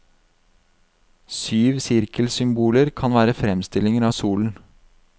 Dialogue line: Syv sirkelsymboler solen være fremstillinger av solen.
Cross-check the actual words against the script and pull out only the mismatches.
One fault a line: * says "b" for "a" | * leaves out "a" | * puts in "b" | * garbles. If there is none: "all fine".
* says "kan" for "solen"